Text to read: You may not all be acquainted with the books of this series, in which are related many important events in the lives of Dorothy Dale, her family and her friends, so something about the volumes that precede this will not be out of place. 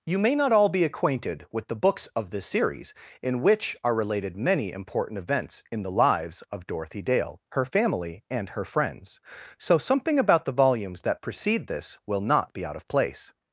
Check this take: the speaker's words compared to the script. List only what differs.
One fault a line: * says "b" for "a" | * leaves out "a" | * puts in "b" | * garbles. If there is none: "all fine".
all fine